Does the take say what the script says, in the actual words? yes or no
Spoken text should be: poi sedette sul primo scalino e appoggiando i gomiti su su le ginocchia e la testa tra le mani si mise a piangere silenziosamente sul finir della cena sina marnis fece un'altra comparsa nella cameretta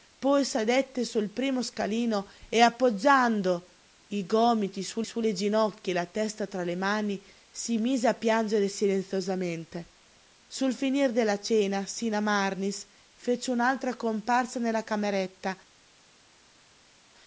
yes